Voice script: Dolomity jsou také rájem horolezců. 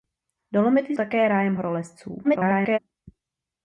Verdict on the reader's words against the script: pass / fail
fail